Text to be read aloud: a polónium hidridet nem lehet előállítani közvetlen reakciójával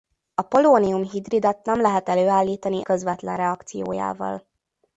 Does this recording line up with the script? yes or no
yes